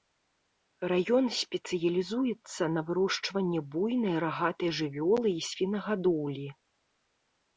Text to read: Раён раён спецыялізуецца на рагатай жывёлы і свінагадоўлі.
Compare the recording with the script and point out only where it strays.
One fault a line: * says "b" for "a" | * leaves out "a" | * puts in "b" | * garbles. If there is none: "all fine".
* leaves out "раён"
* puts in "вырошчванні буйнай"